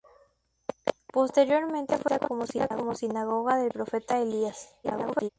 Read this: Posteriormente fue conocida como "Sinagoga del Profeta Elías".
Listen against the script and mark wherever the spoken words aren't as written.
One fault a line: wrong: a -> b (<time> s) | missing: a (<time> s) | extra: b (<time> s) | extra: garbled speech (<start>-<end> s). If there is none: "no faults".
extra: garbled speech (4.8-5.3 s)